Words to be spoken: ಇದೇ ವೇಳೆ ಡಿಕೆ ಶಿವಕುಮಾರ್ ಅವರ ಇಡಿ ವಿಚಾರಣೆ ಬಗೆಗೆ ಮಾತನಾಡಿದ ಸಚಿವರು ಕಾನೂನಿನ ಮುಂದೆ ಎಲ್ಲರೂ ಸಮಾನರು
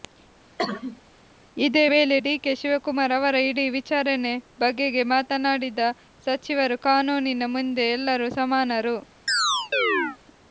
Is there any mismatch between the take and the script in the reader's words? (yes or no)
no